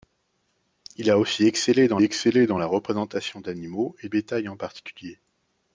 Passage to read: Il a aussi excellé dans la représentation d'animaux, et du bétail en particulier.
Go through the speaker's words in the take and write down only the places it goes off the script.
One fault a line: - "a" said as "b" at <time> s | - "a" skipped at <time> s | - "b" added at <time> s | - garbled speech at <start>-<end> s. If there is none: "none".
- "excellé dans" added at 2.0 s
- "du" skipped at 4.1 s